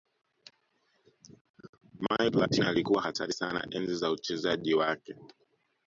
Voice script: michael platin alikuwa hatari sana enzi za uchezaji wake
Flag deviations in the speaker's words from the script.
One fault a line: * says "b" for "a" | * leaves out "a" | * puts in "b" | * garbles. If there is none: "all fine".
all fine